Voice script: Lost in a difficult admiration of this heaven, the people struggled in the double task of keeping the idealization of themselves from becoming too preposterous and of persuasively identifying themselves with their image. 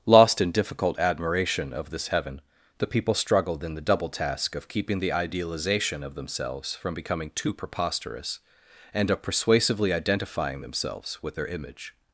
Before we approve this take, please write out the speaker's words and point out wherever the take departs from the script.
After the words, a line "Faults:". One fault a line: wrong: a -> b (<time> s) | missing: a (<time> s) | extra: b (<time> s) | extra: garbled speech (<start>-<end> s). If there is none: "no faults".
Lost in difficult admiration of this heaven, the people struggled in the double task of keeping the idealization of themselves from becoming too preposterous and of persuasively identifying themselves with their image.
Faults:
missing: a (0.5 s)